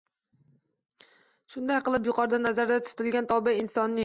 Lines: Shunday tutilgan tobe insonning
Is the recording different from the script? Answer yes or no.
yes